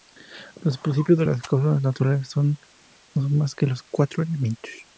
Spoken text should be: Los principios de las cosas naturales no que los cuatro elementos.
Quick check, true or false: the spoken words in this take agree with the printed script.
false